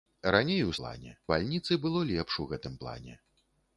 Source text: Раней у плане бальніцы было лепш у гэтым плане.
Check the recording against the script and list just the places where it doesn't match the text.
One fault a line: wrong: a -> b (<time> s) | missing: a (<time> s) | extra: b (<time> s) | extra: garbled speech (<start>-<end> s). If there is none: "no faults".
no faults